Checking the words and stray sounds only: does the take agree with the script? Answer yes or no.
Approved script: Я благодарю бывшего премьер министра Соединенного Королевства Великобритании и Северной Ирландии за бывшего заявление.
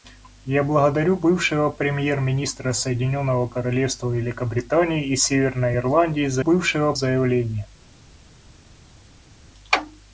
yes